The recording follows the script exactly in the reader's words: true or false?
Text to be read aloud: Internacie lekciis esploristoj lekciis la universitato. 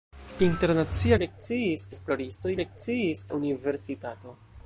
true